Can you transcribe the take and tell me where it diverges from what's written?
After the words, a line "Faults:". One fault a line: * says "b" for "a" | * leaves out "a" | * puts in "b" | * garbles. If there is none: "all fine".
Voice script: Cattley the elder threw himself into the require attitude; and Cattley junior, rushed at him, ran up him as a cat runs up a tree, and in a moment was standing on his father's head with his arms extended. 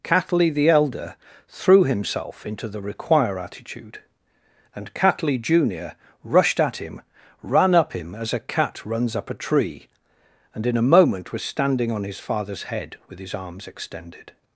Cattley the elder threw himself into the require attitude; and Cattley junior, rushed at him, ran up him as a cat runs up a tree, and in a moment was standing on his father's head with his arms extended.
Faults:
all fine